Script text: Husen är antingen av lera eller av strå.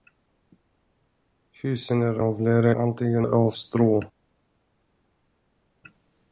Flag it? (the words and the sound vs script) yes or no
yes